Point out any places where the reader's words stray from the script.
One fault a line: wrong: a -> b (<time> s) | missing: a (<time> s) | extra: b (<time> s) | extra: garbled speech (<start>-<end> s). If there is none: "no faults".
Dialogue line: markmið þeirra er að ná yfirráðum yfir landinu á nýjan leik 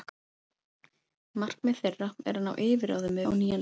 missing: yfir landinu (3.2 s)